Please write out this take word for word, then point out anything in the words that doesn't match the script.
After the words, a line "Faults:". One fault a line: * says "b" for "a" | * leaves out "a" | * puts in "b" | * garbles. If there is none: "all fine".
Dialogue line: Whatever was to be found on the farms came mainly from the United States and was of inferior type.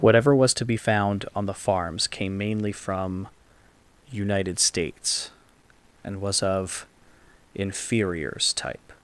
Whatever was to be found on the farms came mainly from United States and was of inferiors type.
Faults:
* leaves out "the"
* says "inferiors" for "inferior"